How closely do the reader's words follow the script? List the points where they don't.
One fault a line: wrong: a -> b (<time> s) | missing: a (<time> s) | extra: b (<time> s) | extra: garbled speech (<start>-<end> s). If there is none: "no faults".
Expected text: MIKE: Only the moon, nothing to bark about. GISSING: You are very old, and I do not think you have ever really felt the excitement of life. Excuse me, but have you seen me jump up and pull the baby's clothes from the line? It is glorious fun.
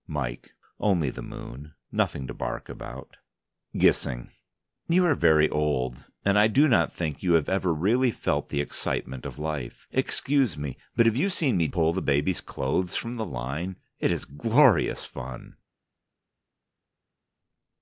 missing: jump up and (11.7 s)